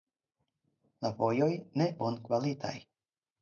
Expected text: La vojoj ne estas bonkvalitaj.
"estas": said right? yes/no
no